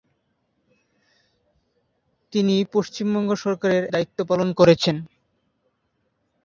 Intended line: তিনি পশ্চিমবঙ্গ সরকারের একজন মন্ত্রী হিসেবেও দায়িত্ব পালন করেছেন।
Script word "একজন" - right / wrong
wrong